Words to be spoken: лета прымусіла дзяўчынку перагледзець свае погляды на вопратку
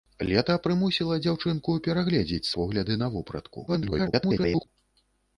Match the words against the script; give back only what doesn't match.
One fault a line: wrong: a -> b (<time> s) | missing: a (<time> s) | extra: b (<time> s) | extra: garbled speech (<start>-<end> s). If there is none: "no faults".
missing: свае (2.5 s)
extra: garbled speech (3.7-4.7 s)